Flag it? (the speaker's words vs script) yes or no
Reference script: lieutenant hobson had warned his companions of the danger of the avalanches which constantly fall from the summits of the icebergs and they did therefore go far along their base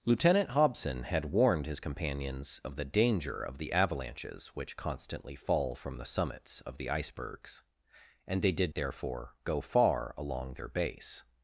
no